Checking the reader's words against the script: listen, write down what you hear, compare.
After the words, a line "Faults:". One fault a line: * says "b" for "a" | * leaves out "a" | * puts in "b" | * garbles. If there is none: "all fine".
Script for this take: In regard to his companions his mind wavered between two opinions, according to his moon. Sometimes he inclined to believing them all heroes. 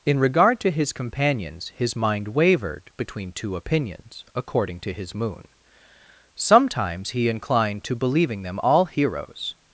In regard to his companions his mind wavered between two opinions, according to his moon. Sometimes he inclined to believing them all heroes.
Faults:
all fine